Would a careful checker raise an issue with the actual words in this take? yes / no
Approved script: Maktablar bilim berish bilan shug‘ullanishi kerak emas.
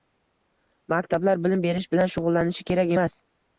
no